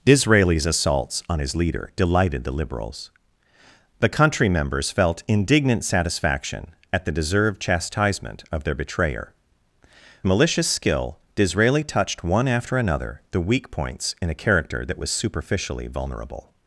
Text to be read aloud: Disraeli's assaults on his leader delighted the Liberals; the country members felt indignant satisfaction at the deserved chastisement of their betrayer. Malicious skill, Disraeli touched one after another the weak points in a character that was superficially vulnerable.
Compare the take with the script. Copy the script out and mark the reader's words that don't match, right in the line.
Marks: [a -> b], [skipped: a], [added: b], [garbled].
Disraeli's assaults on his leader delighted the Liberals; the country members felt indignant satisfaction at the deserved chastisement of their betrayer. Malicious skill, Disraeli touched one after another the weak points in a character that was superficially vulnerable.